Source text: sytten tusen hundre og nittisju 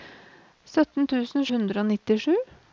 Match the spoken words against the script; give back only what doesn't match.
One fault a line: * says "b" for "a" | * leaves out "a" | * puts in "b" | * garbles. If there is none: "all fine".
all fine